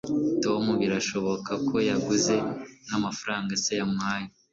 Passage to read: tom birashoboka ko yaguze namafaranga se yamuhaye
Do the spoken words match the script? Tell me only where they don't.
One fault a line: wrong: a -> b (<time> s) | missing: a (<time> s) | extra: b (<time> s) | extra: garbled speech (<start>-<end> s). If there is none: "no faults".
no faults